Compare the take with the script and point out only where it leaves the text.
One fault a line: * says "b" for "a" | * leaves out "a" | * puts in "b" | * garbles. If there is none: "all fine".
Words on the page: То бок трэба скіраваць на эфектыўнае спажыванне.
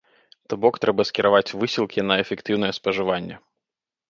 * puts in "высілкі"